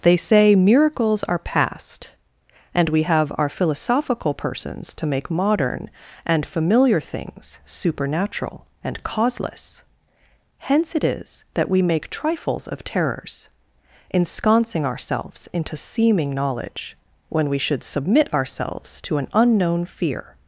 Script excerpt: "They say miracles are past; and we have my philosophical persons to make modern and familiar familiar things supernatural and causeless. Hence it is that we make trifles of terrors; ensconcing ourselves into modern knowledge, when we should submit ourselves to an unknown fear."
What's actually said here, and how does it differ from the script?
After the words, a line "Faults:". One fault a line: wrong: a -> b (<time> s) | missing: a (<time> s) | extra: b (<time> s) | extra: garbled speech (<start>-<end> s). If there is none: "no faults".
"They say miracles are past; and we have our philosophical persons to make modern and familiar things supernatural and causeless. Hence it is that we make trifles of terrors; ensconcing ourselves into seeming knowledge, when we should submit ourselves to an unknown fear."
Faults:
wrong: my -> our (3.4 s)
missing: familiar (7.0 s)
wrong: modern -> seeming (15.8 s)